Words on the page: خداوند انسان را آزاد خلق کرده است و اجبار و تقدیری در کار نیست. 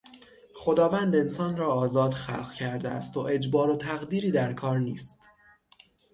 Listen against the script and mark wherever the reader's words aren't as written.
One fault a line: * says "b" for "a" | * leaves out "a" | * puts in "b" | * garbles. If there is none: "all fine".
all fine